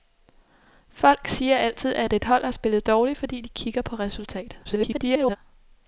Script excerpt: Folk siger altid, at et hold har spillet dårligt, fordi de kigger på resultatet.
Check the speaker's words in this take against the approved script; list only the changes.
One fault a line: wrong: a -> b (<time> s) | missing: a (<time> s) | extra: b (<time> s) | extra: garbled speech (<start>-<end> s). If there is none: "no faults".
extra: garbled speech (4.6-5.4 s)